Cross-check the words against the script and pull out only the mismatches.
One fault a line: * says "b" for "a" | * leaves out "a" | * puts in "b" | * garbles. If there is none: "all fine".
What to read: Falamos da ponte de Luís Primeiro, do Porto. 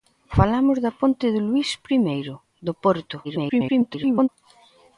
* garbles